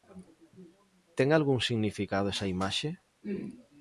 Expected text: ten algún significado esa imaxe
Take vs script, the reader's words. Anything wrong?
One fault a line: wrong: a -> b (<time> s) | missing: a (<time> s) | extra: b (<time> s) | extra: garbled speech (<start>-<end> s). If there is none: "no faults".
no faults